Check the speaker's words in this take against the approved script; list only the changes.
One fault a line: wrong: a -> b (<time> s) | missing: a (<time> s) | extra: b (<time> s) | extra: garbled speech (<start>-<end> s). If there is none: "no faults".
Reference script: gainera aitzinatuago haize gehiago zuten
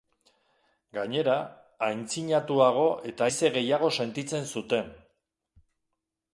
extra: eta (3.1 s)
extra: sentitzen (4.0 s)